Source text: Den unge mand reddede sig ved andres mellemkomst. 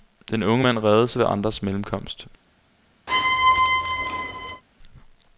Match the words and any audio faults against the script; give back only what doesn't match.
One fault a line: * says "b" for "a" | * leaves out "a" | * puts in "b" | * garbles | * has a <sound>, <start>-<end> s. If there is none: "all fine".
* has a squeak, 3.1-4.6 s